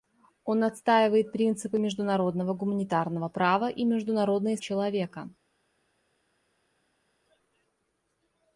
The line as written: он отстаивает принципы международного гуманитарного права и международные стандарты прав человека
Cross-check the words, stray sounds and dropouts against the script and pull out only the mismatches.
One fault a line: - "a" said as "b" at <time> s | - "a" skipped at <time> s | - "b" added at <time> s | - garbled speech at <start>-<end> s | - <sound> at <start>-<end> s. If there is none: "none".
- "стандарты прав" skipped at 4.6 s